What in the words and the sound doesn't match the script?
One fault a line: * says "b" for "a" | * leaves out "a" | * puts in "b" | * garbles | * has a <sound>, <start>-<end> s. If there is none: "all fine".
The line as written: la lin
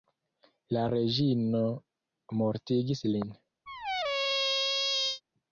* puts in "reĝino mortigis"
* has a squeak, 3.7-5.2 s